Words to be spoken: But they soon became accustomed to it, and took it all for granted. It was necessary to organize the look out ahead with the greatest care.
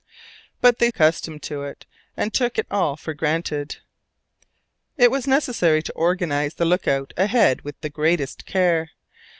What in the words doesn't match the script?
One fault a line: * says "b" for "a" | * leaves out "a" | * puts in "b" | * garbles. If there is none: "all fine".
* leaves out "soon became"